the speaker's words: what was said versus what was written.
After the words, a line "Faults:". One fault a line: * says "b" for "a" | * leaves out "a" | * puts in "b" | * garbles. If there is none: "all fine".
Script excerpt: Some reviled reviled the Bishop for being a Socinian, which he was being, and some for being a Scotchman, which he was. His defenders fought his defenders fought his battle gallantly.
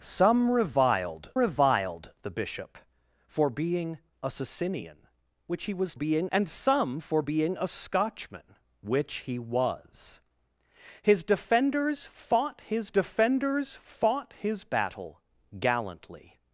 Some reviled reviled the Bishop for being a Socinian, which he was being, and some for being a Scotchman, which he was. His defenders fought his defenders fought his battle gallantly.
Faults:
all fine